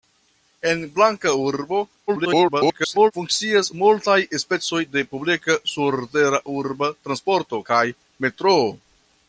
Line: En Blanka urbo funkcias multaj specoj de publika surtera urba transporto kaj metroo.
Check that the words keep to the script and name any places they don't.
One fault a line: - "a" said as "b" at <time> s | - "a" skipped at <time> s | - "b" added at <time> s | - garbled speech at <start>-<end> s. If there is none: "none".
- garbled speech at 2.1-3.1 s